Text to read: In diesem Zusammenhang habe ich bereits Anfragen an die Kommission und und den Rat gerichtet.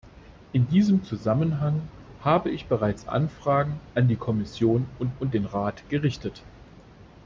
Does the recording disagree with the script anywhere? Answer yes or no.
no